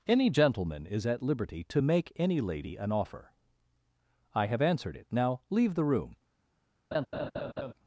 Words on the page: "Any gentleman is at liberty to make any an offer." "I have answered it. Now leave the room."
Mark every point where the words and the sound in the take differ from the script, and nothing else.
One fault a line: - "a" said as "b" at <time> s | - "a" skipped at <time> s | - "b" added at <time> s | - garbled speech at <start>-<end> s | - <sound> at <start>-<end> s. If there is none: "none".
- "lady" added at 2.4 s
- laugh at 6.9-7.7 s